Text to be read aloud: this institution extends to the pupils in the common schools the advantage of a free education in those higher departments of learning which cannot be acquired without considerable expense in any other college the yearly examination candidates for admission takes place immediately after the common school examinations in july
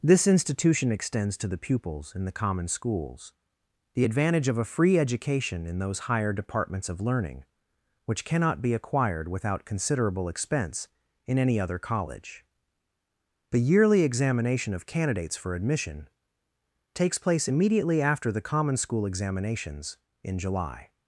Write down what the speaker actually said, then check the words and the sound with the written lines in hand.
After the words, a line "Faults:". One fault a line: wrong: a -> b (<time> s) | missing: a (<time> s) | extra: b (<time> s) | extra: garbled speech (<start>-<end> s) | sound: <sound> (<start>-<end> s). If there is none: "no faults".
this institution extends to the pupils in the common schools the advantage of a free education in those higher departments of learning which cannot be acquired without considerable expense in any other college the yearly examination of candidates for admission takes place immediately after the common school examinations in july
Faults:
extra: of (14.7 s)